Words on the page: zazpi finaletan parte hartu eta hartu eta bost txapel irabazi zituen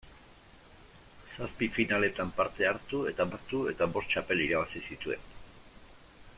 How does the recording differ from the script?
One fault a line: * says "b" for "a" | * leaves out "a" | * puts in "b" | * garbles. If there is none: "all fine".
all fine